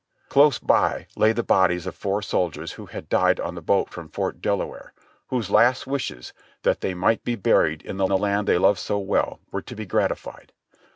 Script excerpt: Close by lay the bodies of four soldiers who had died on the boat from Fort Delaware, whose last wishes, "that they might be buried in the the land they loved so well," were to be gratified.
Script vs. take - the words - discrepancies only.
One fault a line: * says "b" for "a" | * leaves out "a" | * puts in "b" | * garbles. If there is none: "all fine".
all fine